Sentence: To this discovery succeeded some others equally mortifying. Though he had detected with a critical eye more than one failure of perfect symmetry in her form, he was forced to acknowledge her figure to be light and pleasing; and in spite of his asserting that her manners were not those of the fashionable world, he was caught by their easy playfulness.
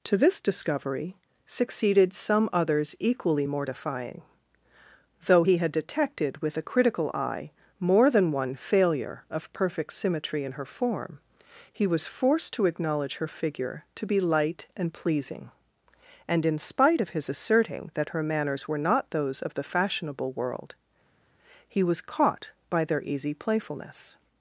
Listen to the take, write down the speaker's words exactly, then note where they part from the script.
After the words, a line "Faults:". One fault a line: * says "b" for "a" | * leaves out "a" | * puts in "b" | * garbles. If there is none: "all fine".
To this discovery succeeded some others equally mortifying. Though he had detected with a critical eye more than one failure of perfect symmetry in her form, he was forced to acknowledge her figure to be light and pleasing; and in spite of his asserting that her manners were not those of the fashionable world, he was caught by their easy playfulness.
Faults:
all fine